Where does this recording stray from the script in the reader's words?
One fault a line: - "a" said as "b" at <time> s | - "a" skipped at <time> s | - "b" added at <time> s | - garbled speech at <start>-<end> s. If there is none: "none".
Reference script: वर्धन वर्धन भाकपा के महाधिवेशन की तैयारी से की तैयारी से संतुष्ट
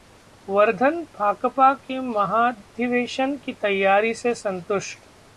- "वर्धन" skipped at 1.0 s
- "की तैयारी से" skipped at 4.3 s